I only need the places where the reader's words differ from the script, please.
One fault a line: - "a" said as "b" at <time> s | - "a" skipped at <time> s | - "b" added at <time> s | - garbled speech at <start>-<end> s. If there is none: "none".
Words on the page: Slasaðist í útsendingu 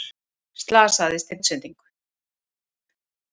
none